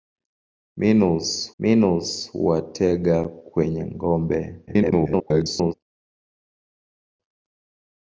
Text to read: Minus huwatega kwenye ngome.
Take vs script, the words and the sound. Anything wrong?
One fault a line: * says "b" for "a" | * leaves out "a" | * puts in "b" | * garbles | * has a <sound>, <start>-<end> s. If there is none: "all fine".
* puts in "minus"
* garbles